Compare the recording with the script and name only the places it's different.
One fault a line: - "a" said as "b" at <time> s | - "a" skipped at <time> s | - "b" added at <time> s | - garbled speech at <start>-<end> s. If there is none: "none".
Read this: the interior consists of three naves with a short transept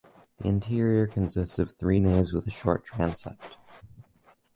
none